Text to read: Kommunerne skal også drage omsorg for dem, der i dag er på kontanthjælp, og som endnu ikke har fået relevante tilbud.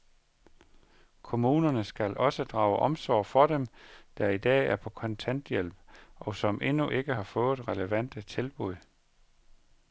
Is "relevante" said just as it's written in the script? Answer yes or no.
yes